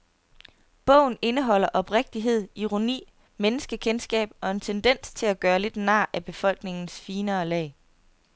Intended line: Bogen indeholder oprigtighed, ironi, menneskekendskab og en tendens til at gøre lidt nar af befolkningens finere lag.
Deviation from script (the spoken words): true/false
false